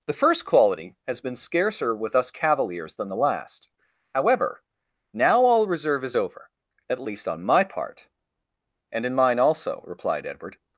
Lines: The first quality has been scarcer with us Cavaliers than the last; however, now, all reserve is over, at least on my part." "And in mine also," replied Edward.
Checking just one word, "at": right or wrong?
right